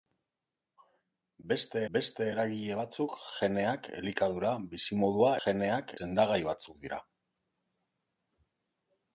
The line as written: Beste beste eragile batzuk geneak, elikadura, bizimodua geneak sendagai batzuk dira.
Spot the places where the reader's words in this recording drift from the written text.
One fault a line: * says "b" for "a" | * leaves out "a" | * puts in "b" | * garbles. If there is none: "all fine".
all fine